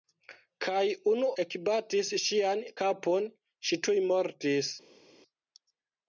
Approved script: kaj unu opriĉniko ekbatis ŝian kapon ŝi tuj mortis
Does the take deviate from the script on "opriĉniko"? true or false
true